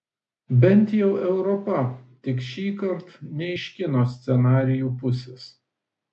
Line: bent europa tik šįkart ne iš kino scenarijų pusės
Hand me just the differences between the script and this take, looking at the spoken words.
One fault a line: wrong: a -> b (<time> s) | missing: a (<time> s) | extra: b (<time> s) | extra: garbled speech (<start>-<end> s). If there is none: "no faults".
extra: jau (1.0 s)